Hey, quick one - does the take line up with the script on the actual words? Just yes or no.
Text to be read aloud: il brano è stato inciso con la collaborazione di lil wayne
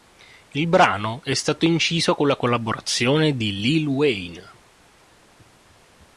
yes